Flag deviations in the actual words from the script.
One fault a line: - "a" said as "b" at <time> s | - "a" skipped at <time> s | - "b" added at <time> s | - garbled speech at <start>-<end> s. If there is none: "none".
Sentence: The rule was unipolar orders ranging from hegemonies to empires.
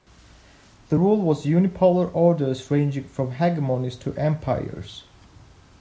none